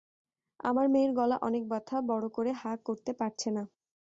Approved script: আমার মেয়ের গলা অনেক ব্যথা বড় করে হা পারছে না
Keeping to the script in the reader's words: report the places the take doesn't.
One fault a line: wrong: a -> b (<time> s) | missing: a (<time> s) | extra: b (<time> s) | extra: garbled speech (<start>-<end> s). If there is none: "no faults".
extra: করতে (2.9 s)